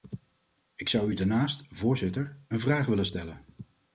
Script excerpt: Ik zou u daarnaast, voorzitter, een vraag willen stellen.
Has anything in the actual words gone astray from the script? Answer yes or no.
no